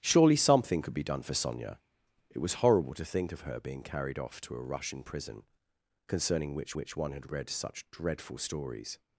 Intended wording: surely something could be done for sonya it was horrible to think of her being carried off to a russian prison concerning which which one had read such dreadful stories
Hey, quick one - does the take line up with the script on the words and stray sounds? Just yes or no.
yes